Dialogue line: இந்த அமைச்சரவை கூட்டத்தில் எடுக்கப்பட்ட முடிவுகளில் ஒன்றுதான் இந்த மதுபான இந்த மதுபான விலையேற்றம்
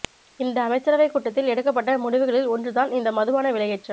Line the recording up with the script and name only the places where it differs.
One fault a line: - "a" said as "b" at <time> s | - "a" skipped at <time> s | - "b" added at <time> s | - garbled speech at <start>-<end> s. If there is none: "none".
- "இந்த மதுபான" skipped at 3.5 s